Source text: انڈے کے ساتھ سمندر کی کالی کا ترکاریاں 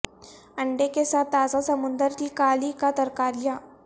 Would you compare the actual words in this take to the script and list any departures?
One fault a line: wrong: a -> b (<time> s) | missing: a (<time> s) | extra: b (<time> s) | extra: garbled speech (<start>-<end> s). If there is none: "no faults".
extra: تازہ (1.3 s)